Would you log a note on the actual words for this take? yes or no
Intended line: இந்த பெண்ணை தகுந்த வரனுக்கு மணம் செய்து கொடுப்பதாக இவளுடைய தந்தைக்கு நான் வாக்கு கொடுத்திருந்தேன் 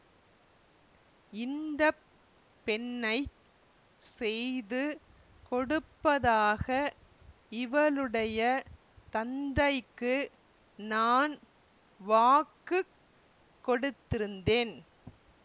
yes